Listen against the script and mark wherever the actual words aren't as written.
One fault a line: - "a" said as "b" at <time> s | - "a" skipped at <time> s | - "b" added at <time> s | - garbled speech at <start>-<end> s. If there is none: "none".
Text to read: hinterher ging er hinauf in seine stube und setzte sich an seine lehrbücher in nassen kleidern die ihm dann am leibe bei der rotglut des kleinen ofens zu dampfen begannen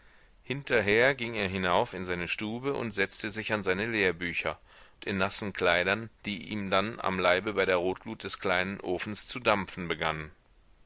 none